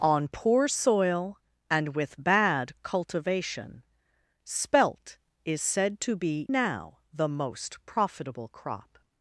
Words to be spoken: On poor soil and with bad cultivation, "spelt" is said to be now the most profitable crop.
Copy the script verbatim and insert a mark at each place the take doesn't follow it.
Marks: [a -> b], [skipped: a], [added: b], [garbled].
On poor soil and with bad cultivation, "spelt" is said to be now the most profitable crop.